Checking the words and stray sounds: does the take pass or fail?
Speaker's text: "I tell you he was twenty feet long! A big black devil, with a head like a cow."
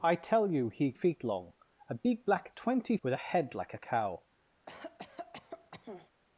fail